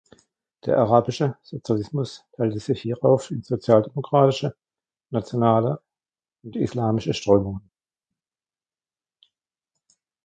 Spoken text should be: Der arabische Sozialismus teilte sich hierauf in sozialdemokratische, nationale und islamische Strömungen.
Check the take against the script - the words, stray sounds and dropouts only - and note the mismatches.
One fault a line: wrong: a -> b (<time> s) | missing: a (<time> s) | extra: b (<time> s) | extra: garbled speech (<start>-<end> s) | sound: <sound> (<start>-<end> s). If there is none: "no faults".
no faults